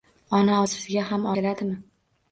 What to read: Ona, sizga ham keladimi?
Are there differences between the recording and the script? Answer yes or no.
no